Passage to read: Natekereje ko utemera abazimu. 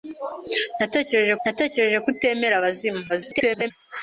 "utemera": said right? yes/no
yes